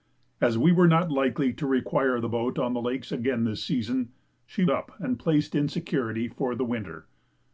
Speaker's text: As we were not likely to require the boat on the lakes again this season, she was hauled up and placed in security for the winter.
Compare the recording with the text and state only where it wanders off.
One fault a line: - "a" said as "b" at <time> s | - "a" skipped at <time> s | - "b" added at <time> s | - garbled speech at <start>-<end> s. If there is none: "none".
- "was hauled" skipped at 4.7 s